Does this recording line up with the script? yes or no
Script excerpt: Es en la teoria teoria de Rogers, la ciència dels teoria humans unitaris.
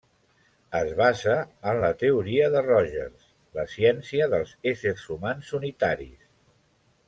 no